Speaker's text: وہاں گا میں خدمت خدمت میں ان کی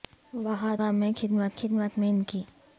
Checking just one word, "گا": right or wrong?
right